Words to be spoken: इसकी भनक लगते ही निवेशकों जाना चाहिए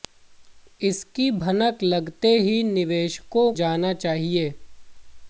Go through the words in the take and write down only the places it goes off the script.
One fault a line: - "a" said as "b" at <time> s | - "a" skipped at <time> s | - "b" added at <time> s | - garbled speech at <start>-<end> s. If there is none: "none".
none